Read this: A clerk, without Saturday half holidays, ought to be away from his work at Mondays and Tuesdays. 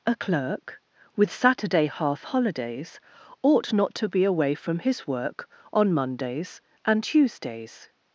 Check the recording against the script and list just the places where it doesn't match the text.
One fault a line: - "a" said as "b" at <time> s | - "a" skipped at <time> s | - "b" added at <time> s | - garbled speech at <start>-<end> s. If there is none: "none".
- "without" said as "with" at 1.2 s
- "not" added at 3.7 s
- "at" said as "on" at 5.7 s